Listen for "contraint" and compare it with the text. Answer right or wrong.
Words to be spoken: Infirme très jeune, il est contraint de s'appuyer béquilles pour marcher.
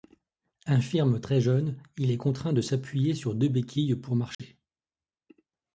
right